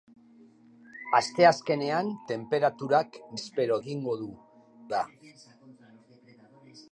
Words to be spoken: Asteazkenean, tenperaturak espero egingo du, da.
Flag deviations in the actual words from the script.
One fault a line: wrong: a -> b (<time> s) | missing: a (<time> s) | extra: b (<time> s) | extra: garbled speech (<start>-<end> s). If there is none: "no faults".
no faults